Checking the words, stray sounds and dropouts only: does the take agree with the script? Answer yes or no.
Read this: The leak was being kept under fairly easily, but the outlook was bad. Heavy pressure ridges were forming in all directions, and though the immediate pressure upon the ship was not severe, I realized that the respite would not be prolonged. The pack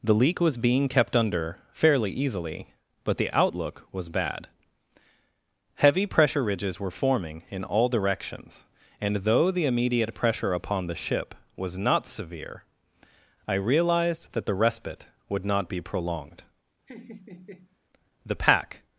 no